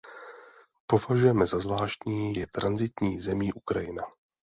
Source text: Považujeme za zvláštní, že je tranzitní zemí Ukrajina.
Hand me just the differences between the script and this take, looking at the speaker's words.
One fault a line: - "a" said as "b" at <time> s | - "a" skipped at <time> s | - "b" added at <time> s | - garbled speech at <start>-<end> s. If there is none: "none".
- "že" skipped at 2.4 s